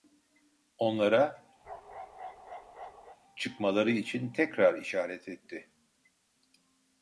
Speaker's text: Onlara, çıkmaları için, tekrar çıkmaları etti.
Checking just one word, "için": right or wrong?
right